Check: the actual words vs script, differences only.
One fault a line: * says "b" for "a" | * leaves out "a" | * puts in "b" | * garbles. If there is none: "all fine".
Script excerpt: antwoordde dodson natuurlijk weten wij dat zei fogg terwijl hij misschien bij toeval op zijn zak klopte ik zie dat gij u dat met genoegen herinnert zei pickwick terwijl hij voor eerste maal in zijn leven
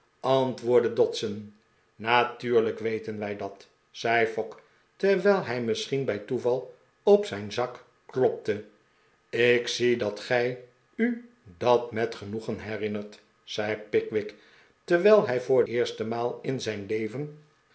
all fine